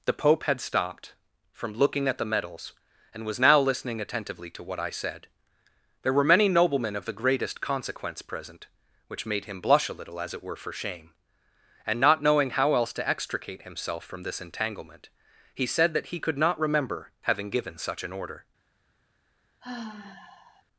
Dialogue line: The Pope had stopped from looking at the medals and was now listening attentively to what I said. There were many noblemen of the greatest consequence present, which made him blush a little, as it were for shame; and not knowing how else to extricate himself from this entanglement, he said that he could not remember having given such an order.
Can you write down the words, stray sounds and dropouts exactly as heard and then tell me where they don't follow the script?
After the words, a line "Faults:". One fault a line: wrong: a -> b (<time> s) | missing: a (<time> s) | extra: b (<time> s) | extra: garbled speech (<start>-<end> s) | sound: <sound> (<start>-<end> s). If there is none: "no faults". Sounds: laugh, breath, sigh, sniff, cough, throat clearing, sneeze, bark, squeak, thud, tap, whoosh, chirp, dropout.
The Pope had stopped from looking at the medals and was now listening attentively to what I said. There were many noblemen of the greatest consequence present, which made him blush a little, as it were for shame; and not knowing how else to extricate himself from this entanglement, he said that he could not remember having given such an order.
Faults:
sound: sigh (19.6-20.6 s)